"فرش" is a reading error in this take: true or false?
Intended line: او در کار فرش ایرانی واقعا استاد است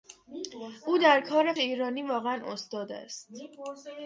true